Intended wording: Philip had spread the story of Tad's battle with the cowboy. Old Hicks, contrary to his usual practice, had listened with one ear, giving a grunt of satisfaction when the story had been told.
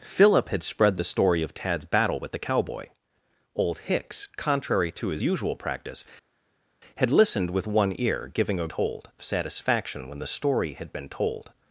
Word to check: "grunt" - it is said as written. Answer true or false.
false